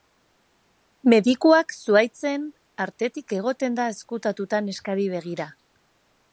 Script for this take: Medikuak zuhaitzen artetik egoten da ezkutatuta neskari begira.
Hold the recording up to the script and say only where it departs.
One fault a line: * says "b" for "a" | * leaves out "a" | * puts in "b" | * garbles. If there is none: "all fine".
all fine